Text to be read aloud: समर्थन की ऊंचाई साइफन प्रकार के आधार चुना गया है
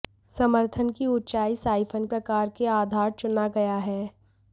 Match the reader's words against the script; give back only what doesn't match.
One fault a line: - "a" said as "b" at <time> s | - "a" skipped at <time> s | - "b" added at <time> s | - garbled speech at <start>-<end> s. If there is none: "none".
none